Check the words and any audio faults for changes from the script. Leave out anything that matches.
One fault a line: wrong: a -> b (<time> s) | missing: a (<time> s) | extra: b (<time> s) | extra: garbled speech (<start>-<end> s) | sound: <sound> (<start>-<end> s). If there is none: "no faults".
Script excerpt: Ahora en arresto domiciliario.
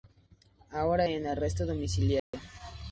sound: dropout (2.2-2.3 s)